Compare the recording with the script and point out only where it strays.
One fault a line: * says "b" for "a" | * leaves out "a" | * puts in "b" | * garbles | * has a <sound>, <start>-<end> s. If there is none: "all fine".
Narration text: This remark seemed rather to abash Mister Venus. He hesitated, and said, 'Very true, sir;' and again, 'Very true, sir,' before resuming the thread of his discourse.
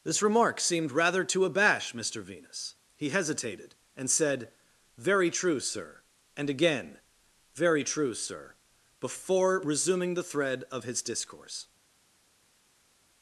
all fine